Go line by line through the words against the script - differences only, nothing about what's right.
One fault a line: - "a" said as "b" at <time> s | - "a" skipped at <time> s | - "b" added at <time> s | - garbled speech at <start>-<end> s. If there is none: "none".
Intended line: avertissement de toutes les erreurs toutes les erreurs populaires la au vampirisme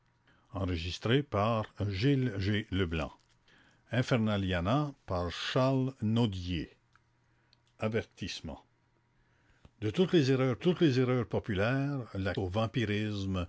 none